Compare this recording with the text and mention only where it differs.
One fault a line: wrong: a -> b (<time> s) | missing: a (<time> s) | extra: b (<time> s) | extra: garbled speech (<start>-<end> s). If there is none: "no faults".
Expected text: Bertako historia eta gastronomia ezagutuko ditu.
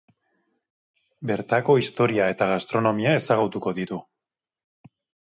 no faults